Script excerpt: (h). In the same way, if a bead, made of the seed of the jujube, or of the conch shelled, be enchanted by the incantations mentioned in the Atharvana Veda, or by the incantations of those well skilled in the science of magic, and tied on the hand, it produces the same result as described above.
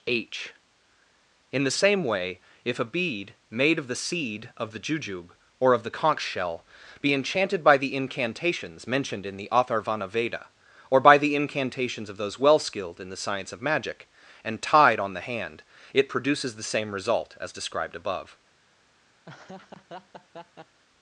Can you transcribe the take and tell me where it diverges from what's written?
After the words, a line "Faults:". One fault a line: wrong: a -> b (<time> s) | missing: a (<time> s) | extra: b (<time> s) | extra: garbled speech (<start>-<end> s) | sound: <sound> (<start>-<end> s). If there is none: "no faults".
(h). In the same way, if a bead, made of the seed of the jujube, or of the conch shell, be enchanted by the incantations mentioned in the Atharvana Veda, or by the incantations of those well skilled in the science of magic, and tied on the hand, it produces the same result as described above.
Faults:
wrong: shelled -> shell (6.2 s)
sound: laugh (19.2-20.8 s)